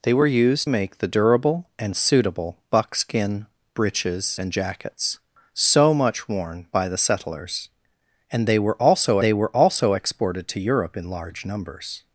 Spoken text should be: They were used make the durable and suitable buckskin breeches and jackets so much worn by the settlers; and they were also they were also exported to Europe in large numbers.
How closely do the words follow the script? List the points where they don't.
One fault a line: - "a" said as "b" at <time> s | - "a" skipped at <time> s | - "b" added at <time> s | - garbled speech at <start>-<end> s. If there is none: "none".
none